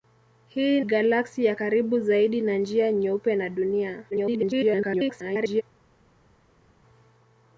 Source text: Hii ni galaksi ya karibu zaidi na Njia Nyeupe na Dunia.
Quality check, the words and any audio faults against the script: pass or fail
fail